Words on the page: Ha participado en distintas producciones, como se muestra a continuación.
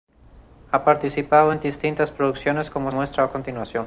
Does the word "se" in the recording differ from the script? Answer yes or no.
yes